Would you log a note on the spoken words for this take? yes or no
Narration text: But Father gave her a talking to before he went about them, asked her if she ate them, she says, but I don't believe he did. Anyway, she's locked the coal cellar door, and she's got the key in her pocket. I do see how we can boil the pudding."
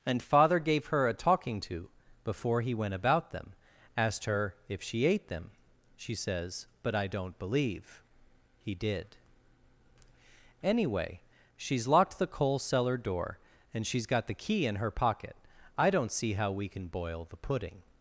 yes